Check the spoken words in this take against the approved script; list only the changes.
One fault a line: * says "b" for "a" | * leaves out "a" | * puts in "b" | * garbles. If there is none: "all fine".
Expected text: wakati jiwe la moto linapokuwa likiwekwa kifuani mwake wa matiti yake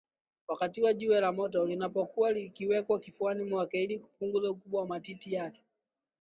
* puts in "ili kupunguza ukubwa"